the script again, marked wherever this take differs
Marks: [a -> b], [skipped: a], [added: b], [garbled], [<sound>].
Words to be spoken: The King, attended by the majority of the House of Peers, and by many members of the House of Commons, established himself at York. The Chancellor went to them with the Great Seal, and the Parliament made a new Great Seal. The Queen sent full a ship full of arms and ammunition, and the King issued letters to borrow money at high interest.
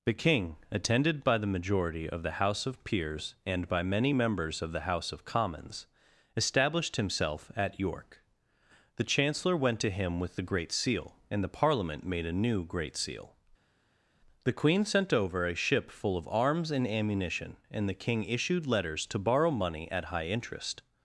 The King, attended by the majority of the House of Peers, and by many members of the House of Commons, established himself at York. The Chancellor went to [them -> him] with the Great Seal, and the Parliament made a new Great Seal. The Queen sent [full -> over] a ship full of arms and ammunition, and the King issued letters to borrow money at high interest.